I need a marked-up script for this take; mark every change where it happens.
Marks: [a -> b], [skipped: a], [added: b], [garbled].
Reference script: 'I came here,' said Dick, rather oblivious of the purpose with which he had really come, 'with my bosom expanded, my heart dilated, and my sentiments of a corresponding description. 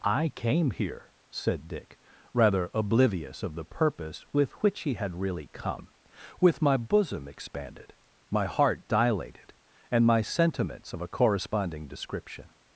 'I came here,' said Dick, rather oblivious of the purpose with which he had really come, 'with my bosom expanded, my heart dilated, and my sentiments of a corresponding description.